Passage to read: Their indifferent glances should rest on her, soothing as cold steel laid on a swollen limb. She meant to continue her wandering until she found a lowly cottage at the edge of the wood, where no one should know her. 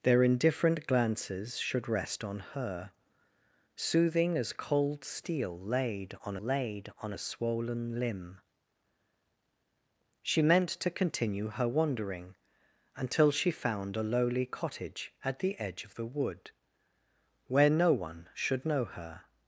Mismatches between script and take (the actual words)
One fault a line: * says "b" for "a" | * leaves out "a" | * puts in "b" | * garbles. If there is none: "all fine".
* puts in "laid on"